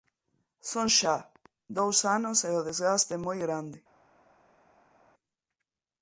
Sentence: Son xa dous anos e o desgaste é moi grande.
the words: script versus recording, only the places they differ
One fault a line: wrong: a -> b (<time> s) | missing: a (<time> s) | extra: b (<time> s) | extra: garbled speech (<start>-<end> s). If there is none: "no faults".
no faults